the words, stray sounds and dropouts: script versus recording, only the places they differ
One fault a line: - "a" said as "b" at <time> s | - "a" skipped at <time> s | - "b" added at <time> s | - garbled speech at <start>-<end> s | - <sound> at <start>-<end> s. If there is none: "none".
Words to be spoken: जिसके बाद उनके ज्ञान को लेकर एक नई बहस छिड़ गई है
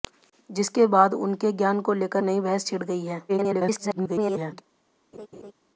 - "एक" skipped at 2.2 s
- garbled speech at 3.3-4.6 s
- laugh at 5.1-5.5 s